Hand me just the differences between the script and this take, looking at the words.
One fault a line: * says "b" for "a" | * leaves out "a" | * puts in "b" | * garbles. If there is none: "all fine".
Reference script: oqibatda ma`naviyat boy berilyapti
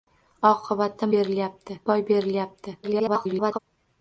* says "berilyapti" for "ma`naviyat"
* garbles